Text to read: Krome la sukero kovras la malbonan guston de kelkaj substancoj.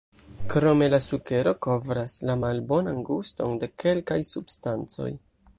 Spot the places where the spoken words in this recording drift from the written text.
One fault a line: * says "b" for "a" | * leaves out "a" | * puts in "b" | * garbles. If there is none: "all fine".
all fine